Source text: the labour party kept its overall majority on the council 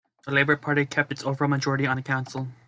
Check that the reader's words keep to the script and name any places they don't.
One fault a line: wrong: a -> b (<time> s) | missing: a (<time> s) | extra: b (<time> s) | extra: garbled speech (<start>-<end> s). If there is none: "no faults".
no faults